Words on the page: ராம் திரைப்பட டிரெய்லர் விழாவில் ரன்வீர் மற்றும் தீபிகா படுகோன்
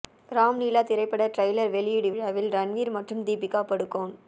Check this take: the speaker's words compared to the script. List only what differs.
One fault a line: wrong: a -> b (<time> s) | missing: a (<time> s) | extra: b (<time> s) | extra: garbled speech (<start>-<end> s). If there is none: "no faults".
extra: லீலா (0.6 s)
extra: வெளியீடு (1.7 s)